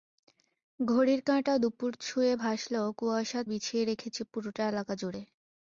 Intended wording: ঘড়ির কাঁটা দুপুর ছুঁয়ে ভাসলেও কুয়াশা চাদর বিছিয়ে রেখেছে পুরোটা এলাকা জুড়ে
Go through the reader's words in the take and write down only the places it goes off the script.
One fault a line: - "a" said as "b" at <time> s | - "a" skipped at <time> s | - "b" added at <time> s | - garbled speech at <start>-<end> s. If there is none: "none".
- "চাদর" skipped at 3.4 s